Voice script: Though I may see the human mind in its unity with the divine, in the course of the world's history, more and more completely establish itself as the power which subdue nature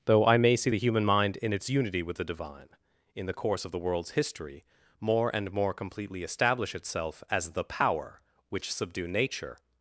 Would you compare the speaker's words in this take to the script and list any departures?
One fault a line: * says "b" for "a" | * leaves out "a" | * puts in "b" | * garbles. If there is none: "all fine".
all fine